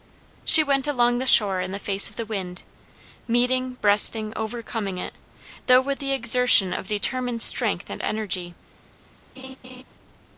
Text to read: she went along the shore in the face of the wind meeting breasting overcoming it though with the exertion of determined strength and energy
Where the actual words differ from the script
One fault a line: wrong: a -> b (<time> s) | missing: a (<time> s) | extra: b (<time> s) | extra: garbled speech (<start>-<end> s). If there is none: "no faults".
no faults